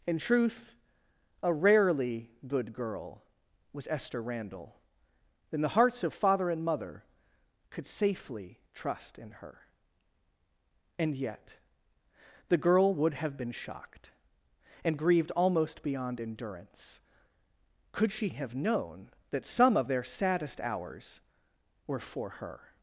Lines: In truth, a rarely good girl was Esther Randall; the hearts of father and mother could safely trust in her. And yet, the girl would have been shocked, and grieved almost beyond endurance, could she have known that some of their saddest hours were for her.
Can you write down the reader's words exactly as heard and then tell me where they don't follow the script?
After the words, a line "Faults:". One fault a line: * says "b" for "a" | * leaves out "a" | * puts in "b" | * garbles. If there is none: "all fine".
In truth, a rarely good girl was Esther Randall; then the hearts of father and mother could safely trust in her. And yet, the girl would have been shocked, and grieved almost beyond endurance, could she have known that some of their saddest hours were for her.
Faults:
* puts in "then"